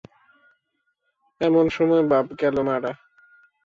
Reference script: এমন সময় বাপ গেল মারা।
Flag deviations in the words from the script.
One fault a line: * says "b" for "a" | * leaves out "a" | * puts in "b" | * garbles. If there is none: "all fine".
all fine